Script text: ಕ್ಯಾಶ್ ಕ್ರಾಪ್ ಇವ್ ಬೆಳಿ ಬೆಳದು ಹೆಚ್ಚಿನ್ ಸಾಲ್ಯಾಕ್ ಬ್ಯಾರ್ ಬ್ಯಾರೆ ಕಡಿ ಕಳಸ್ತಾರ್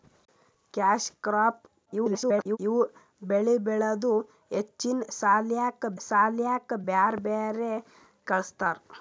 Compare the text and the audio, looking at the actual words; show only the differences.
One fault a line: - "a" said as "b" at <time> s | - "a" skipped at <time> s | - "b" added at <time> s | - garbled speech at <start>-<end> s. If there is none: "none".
- garbled speech at 1.9-2.6 s
- "ಸಾಲ್ಯಾಕ್" added at 6.0 s
- "ಕಡಿ" skipped at 7.7 s